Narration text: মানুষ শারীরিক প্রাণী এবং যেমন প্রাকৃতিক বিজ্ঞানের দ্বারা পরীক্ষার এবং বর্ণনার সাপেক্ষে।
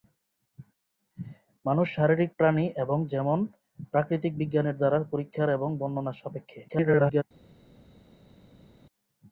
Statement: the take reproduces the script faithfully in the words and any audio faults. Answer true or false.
false